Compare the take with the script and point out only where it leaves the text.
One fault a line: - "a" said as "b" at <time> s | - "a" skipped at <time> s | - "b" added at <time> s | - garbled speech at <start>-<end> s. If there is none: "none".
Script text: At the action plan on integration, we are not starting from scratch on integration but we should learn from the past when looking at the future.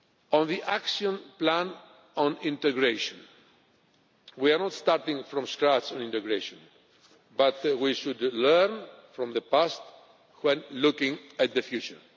- "At" said as "On" at 0.3 s